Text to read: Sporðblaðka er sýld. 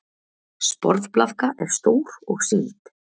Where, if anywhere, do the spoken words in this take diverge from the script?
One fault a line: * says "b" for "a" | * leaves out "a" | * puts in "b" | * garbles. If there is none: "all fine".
* puts in "stór og"